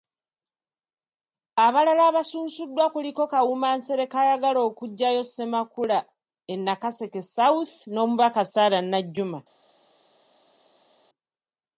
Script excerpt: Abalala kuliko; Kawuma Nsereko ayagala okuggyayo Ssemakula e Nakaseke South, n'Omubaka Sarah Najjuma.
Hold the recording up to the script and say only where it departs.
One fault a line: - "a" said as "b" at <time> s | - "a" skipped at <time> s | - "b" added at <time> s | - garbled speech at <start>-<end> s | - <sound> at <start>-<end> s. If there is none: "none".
- "abasunsuddwa" added at 2.1 s